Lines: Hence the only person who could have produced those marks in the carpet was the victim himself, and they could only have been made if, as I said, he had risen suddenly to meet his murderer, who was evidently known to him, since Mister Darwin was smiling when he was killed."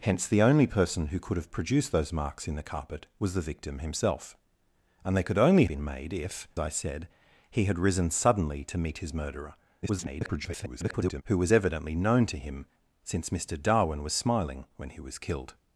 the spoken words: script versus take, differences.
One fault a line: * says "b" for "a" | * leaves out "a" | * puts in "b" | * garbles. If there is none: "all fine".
* leaves out "have"
* leaves out "as"
* garbles